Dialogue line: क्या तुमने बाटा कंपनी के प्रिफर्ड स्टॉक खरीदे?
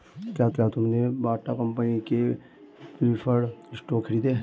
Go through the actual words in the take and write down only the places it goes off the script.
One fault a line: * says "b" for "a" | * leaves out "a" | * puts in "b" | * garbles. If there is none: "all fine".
* puts in "क्या"